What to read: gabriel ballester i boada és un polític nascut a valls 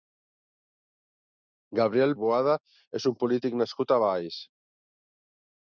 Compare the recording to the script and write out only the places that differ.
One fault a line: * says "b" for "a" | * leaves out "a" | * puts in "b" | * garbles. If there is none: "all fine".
* leaves out "ballester"